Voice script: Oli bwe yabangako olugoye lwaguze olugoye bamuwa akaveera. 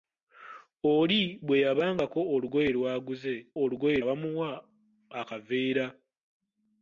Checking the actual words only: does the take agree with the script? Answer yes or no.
yes